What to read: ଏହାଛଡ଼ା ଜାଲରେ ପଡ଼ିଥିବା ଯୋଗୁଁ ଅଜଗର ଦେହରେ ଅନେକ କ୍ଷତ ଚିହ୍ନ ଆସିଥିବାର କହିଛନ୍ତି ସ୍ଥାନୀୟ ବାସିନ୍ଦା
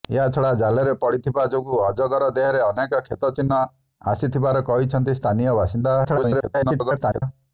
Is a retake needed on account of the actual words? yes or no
yes